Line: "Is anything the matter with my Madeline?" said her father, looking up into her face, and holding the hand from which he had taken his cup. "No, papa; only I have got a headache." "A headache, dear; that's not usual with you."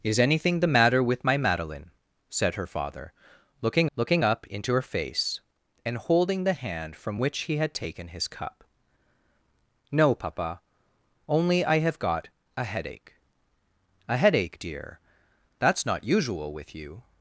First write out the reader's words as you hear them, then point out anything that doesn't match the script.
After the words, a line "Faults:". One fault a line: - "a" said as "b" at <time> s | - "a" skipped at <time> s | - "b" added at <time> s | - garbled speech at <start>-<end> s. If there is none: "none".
"Is anything the matter with my Madeline?" said her father, looking looking up into her face, and holding the hand from which he had taken his cup. "No, papa; only I have got a headache." "A headache, dear; that's not usual with you."
Faults:
- "looking" added at 4.0 s